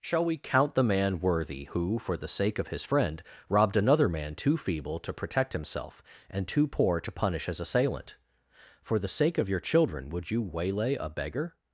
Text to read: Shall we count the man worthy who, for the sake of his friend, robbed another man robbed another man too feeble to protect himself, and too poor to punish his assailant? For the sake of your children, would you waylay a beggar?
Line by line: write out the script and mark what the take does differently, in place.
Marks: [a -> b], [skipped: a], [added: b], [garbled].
Shall we count the man worthy who, for the sake of his friend, robbed another man [skipped: robbed another man] too feeble to protect himself, and too poor to punish his assailant? For the sake of your children, would you waylay a beggar?